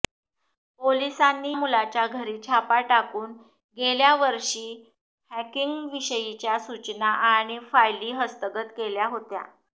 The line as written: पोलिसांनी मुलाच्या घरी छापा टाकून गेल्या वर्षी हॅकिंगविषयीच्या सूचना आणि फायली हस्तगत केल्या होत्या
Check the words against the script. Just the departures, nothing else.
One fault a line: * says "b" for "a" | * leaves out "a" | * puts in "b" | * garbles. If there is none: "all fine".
all fine